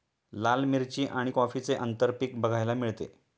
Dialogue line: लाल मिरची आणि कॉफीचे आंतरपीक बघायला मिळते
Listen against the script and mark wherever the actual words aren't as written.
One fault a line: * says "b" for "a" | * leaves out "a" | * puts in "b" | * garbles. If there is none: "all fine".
all fine